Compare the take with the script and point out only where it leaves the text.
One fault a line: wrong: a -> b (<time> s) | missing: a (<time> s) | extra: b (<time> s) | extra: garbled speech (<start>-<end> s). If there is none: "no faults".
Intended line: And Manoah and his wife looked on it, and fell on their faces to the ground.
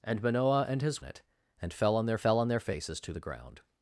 wrong: wife looked -> it and fell (1.0 s)
wrong: it and -> their (2.1 s)